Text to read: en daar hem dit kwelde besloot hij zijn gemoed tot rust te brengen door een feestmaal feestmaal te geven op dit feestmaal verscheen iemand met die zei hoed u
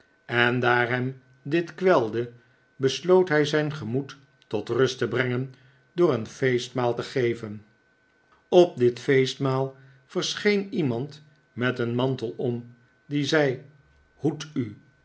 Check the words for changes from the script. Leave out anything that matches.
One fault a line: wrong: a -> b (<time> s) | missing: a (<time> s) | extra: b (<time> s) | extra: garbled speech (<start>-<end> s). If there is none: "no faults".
missing: feestmaal (7.0 s)
extra: een mantel om (11.8 s)